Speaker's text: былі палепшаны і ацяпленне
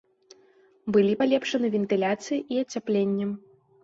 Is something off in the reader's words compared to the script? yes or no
yes